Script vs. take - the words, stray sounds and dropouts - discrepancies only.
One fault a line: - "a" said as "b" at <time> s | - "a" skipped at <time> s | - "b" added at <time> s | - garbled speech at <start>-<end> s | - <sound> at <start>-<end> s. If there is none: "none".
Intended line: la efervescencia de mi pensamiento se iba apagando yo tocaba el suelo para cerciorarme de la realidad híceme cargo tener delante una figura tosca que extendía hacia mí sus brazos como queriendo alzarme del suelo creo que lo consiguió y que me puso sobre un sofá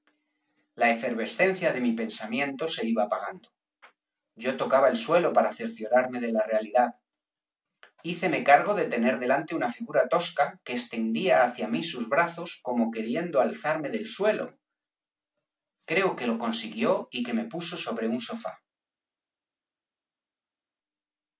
- "de" added at 8.7 s